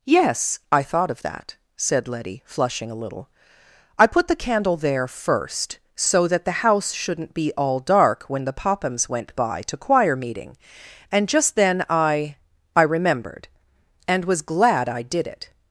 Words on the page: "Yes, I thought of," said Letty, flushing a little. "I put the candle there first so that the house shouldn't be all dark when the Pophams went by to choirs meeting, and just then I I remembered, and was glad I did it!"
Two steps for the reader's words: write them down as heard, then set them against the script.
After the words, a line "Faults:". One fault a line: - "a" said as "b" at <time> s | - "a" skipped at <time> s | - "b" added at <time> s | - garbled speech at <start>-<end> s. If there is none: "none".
"Yes, I thought of that," said Letty, flushing a little. "I put the candle there first so that the house shouldn't be all dark when the Pophams went by to choir meeting, and just then I I remembered, and was glad I did it!"
Faults:
- "that" added at 1.2 s
- "choirs" said as "choir" at 9.8 s